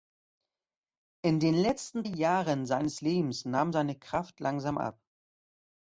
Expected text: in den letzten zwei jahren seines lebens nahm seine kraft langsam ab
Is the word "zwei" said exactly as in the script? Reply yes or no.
no